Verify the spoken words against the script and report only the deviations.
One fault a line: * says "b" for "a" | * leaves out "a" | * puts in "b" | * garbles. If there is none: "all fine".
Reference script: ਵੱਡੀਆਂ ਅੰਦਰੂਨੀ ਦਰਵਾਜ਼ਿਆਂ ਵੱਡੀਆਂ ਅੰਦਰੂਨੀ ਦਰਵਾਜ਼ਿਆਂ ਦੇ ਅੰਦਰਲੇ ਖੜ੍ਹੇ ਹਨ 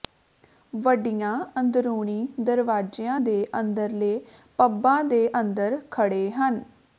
* says "ਦੇ ਅੰਦਰਲੇ ਪੱਬਾਂ" for "ਵੱਡੀਆਂ ਅੰਦਰੂਨੀ ਦਰਵਾਜ਼ਿਆਂ"
* says "ਅੰਦਰ" for "ਅੰਦਰਲੇ"